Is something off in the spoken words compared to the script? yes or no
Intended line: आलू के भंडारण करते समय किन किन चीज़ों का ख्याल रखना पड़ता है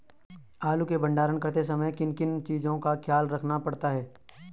no